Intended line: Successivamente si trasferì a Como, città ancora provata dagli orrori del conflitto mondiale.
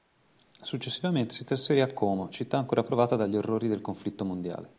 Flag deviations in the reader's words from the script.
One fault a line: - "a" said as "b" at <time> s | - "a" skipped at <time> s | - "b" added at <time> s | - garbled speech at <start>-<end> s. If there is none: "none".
none